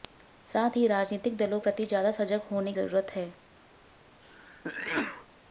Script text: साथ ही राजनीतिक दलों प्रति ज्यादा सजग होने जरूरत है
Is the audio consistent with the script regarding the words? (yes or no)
yes